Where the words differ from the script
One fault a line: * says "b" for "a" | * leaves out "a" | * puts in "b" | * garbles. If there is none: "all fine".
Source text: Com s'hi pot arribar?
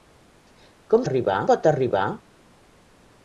* says "arribar" for "s'hi"